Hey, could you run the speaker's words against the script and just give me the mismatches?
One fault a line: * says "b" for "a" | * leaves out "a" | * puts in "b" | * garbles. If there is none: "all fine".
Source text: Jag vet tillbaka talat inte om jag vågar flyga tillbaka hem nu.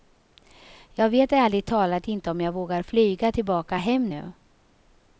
* says "ärligt" for "tillbaka"